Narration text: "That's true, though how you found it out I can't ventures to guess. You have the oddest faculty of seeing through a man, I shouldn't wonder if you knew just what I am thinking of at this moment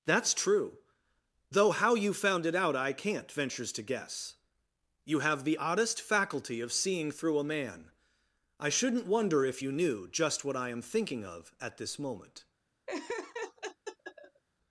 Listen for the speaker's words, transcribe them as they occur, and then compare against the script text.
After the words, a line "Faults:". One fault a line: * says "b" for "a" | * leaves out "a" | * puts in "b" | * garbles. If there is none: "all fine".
"That's true, though how you found it out I can't ventures to guess. You have the oddest faculty of seeing through a man, I shouldn't wonder if you knew just what I am thinking of at this moment
Faults:
all fine